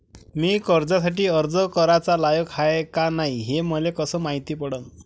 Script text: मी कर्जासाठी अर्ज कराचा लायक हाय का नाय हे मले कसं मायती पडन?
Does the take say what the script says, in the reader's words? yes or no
yes